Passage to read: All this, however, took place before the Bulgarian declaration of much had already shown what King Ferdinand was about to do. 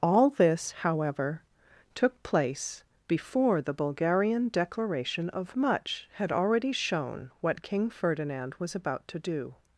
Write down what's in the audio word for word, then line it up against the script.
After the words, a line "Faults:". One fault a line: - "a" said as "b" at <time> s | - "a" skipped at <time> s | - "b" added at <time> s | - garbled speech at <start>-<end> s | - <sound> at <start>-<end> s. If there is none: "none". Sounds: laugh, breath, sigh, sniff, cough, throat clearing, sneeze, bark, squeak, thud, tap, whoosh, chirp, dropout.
All this, however, took place before the Bulgarian declaration of much had already shown what King Ferdinand was about to do.
Faults:
none